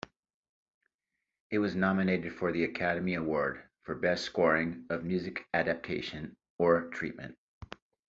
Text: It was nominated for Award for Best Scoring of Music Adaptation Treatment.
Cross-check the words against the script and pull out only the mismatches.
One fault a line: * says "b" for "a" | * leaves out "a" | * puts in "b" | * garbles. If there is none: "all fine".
* puts in "the Academy"
* puts in "or"